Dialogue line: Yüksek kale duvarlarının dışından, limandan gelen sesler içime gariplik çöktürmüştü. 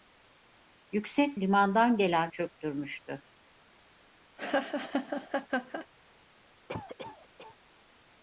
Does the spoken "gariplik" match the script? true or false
false